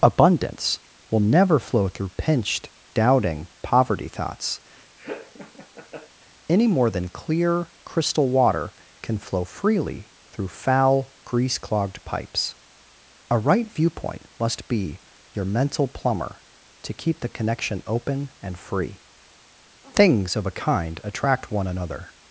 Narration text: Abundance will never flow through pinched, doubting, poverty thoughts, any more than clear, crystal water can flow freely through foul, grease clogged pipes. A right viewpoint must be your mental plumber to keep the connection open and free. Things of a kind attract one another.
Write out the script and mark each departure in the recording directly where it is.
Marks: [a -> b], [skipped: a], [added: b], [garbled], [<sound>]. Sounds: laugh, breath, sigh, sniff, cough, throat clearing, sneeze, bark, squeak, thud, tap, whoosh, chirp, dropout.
Abundance will never flow through pinched, doubting, poverty thoughts, [laugh] any more than clear, crystal water can flow freely through foul, grease clogged pipes. A right viewpoint must be your mental plumber to keep the connection open and free. Things of a kind attract one another.